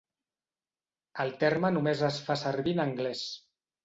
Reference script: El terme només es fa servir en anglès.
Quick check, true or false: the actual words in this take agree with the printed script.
true